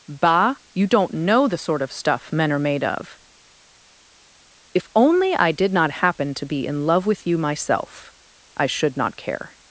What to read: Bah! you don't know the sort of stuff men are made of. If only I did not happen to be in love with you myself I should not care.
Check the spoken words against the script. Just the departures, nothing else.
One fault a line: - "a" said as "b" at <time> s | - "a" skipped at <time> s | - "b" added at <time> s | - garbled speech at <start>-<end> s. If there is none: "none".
none